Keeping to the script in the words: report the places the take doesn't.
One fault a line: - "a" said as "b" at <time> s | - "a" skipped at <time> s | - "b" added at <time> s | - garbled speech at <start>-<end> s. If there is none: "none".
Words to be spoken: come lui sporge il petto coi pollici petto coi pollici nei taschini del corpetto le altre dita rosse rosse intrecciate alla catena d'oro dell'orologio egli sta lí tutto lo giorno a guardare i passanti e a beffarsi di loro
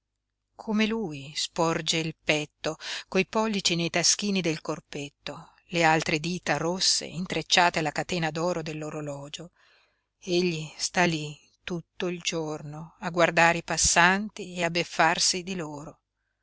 - "petto coi pollici" skipped at 3.8 s
- "rosse" skipped at 7.0 s
- "lo" said as "il" at 12.1 s